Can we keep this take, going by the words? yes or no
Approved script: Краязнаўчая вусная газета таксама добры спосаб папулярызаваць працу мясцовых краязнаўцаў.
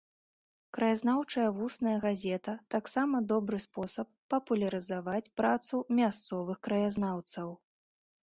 yes